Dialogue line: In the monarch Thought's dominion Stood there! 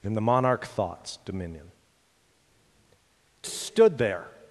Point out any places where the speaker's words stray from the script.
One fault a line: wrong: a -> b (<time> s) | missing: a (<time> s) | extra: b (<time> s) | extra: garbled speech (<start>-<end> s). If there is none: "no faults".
no faults